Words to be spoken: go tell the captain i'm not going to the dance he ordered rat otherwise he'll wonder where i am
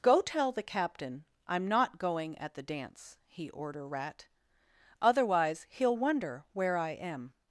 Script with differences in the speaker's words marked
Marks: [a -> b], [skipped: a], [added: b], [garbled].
go tell the captain i'm not going [to -> at] the dance he [ordered -> order] rat otherwise he'll wonder where i am